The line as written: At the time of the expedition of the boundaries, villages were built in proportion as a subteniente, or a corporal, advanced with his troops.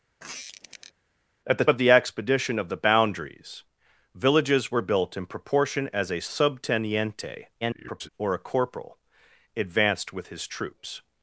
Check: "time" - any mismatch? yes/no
yes